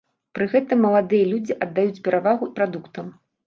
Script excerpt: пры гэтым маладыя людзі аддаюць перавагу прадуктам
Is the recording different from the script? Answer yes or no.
no